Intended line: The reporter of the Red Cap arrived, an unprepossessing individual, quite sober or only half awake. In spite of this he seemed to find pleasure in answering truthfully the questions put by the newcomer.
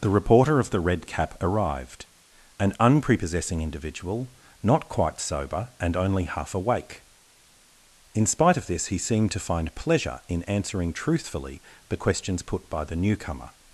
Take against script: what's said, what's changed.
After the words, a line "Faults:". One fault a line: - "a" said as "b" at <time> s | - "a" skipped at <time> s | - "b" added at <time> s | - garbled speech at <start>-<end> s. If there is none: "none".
The reporter of the Red Cap arrived, an unprepossessing individual, not quite sober and only half awake. In spite of this he seemed to find pleasure in answering truthfully the questions put by the newcomer.
Faults:
- "not" added at 4.6 s
- "or" said as "and" at 5.8 s